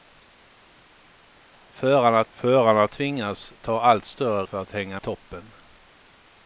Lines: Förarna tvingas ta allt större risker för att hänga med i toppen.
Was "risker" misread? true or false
true